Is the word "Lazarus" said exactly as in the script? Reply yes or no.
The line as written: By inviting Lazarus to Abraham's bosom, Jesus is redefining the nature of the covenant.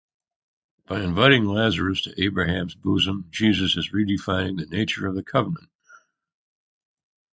yes